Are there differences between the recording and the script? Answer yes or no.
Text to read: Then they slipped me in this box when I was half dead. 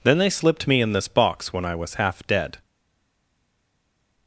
no